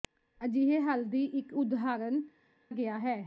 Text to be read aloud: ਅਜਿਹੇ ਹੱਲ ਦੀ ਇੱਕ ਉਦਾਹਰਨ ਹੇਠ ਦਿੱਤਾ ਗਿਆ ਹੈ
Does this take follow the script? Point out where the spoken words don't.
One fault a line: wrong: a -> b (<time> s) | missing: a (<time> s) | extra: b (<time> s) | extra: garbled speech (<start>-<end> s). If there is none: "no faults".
missing: ਹੇਠ ਦਿੱਤਾ (2.2 s)